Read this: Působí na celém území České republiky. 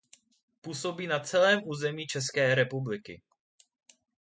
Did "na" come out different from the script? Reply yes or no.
no